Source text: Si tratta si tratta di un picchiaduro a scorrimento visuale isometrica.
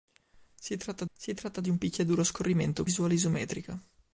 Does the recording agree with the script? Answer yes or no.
yes